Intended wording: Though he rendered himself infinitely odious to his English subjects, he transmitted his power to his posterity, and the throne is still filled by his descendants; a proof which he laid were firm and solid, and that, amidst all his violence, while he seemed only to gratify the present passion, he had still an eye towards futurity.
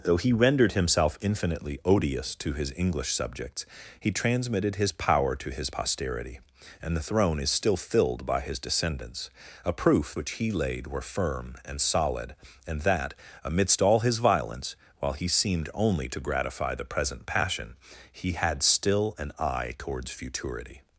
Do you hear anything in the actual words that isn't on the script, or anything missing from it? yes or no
no